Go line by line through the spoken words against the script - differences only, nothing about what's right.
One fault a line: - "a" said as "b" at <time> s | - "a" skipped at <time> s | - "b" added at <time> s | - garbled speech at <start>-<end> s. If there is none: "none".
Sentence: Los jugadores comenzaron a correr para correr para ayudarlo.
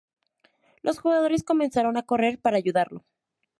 - "correr para" skipped at 2.6 s